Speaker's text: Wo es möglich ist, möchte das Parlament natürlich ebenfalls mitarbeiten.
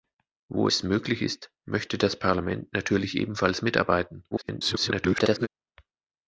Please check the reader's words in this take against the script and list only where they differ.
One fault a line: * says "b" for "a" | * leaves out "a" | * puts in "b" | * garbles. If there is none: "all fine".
* garbles